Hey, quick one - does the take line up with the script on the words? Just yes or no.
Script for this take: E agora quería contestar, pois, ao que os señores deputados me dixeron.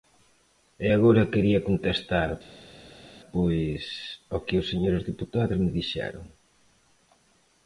yes